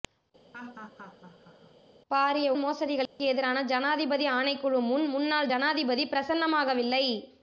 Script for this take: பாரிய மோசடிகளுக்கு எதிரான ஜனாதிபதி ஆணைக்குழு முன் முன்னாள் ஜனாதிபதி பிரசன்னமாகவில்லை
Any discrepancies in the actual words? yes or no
no